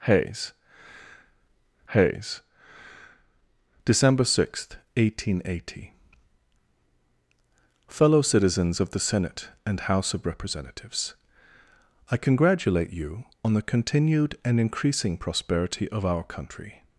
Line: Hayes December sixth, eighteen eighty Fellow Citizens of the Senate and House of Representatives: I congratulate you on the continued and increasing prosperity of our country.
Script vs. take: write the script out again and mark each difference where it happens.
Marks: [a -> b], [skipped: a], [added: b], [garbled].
Hayes [added: hayes] December sixth, eighteen eighty Fellow Citizens of the Senate and House of Representatives: I congratulate you on the continued and increasing prosperity of our country.